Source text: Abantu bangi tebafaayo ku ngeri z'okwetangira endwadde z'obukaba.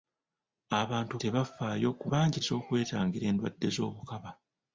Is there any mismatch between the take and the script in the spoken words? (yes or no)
yes